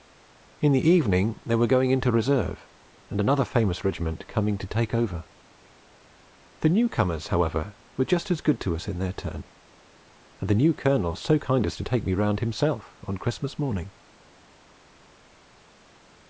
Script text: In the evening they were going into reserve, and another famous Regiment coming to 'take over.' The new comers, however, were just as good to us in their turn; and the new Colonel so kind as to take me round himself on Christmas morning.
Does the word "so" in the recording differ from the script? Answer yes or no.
no